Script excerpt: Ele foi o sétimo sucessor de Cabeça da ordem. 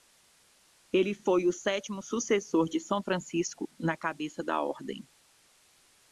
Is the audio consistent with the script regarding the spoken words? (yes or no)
no